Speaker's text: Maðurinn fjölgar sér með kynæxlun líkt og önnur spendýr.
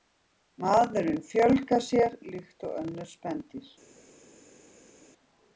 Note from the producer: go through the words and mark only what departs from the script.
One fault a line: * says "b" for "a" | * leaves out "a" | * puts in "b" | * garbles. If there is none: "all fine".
* leaves out "með kynæxlun"